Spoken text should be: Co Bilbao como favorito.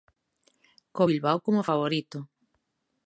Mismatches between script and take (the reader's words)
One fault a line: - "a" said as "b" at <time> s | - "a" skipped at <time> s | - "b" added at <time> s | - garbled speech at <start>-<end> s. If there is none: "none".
none